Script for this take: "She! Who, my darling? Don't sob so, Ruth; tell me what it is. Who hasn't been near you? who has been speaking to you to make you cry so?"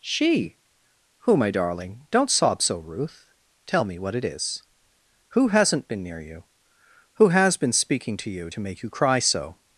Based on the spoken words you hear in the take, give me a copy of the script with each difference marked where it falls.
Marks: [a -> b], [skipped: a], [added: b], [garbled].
"She! Who, my darling? Don't sob so, Ruth; tell me what it is. Who hasn't been near you? who has been speaking to you to make you cry so?"